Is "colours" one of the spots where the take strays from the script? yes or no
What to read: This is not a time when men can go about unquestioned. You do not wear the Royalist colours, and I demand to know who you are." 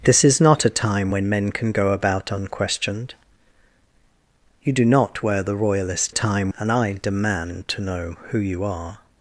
yes